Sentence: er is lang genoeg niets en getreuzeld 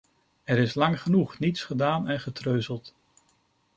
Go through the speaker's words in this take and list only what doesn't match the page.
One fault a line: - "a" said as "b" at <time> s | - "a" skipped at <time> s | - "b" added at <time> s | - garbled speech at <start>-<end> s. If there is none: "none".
- "gedaan" added at 1.6 s